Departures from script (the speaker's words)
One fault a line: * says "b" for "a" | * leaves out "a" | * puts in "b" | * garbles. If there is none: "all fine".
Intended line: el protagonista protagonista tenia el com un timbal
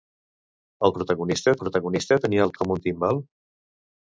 all fine